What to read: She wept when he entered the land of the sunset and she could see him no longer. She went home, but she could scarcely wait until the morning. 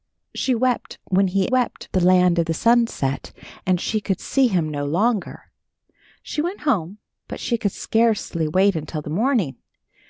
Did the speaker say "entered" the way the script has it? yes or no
no